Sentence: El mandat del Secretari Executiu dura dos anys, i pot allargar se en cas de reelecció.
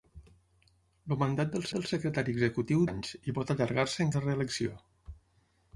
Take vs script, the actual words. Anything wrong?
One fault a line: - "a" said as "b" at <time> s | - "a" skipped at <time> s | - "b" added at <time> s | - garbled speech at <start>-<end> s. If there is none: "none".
- "del" added at 1.8 s
- "dura dos" skipped at 2.8 s
- "cas" skipped at 4.2 s